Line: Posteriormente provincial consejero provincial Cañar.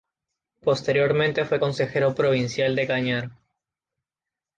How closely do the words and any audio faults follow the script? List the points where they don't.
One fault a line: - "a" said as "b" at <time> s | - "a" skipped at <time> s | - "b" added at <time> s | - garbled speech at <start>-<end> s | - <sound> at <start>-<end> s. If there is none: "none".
- "provincial" said as "fue" at 1.4 s
- "de" added at 2.7 s